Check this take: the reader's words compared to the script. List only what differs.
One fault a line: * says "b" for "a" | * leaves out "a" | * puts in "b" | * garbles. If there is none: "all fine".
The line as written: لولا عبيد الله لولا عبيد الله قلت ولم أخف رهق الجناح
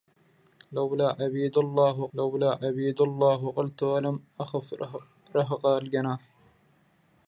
all fine